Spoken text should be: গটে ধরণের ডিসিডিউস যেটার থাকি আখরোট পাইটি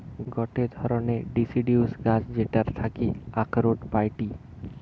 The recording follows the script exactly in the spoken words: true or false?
false